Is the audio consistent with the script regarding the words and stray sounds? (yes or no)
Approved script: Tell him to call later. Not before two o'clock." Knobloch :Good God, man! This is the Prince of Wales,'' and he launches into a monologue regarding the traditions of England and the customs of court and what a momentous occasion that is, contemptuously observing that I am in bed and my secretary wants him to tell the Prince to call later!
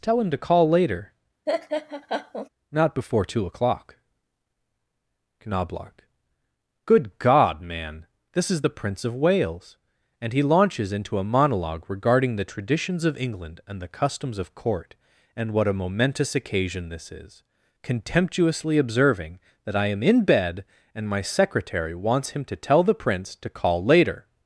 no